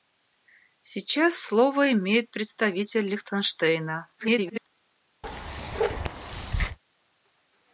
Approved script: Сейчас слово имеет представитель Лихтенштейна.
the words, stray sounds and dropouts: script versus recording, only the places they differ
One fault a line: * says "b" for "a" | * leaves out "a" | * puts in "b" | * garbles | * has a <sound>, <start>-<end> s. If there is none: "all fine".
* garbles
* has a bark, 5.2-6.8 s